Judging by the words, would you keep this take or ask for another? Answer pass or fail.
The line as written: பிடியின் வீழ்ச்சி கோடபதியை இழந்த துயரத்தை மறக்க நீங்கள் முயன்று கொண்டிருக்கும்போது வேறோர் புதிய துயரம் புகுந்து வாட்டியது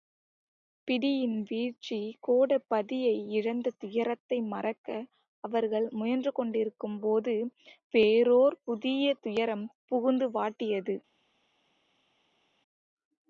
fail